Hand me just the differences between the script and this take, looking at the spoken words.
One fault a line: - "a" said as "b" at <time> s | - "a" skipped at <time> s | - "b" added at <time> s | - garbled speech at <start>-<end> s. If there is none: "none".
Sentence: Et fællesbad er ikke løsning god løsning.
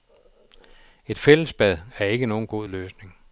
- "løsning" said as "nogen" at 2.3 s